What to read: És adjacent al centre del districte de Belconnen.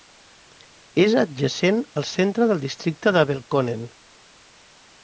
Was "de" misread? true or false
false